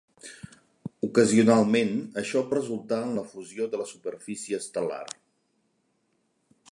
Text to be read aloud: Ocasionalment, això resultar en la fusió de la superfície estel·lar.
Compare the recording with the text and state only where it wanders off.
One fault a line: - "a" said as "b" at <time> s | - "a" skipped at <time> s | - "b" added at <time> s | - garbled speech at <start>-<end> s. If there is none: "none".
none